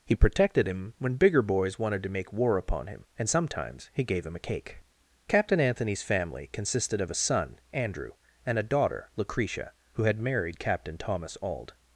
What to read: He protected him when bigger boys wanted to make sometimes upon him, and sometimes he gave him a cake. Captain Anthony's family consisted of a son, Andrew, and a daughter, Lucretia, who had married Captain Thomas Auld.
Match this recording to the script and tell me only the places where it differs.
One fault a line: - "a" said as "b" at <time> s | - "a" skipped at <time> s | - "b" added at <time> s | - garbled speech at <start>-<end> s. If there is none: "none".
- "sometimes" said as "war" at 2.3 s